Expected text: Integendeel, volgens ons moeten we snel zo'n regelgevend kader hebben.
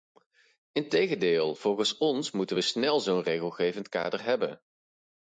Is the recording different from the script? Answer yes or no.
no